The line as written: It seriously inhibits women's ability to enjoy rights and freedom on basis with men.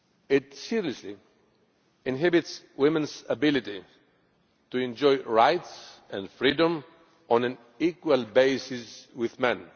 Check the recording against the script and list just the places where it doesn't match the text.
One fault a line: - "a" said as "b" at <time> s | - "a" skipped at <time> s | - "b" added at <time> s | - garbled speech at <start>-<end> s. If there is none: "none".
- "an equal" added at 7.4 s